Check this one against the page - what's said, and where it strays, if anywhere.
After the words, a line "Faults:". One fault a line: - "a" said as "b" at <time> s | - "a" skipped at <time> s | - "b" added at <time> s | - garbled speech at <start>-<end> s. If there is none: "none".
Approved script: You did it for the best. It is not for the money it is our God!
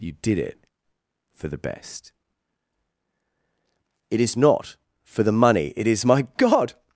You did it for the best. It is not for the money it is my God!
Faults:
- "our" said as "my" at 6.0 s